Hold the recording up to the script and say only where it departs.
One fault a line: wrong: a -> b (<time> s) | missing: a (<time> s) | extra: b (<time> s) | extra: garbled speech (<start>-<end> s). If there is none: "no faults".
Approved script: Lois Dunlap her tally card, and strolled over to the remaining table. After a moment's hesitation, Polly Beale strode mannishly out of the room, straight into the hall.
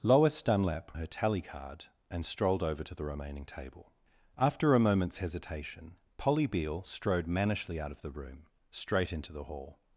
no faults